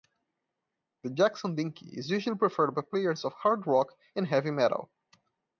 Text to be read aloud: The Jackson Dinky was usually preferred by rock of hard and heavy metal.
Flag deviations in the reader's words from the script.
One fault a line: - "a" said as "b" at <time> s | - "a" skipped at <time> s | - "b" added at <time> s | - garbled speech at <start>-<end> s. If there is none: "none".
- "was" said as "is" at 1.9 s
- "rock" said as "players" at 2.8 s
- "rock" added at 3.7 s